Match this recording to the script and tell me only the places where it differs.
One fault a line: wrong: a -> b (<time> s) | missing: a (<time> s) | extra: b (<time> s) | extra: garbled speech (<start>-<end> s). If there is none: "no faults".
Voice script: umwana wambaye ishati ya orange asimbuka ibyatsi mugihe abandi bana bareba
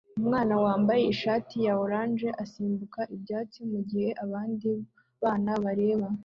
no faults